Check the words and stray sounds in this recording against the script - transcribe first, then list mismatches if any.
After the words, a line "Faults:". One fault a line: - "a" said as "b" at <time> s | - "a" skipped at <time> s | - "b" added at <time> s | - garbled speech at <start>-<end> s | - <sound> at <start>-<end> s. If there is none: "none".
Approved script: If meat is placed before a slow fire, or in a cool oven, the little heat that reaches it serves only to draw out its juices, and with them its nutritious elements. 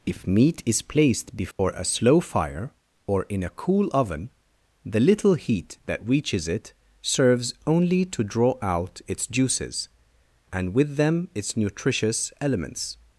If meat is placed before a slow fire, or in a cool oven, the little heat that reaches it serves only to draw out its juices, and with them its nutritious elements.
Faults:
- dropout at 1.5-1.6 s